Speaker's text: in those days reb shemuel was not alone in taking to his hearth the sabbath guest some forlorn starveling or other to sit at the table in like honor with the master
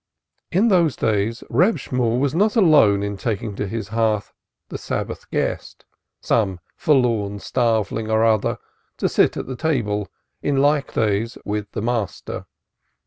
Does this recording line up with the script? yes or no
no